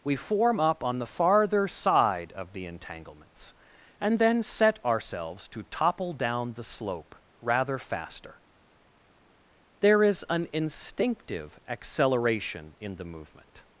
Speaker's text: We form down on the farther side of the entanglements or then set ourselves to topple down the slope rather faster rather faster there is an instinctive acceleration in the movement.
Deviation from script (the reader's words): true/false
true